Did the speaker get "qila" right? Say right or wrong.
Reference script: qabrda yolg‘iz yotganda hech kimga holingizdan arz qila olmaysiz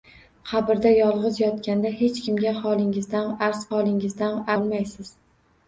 wrong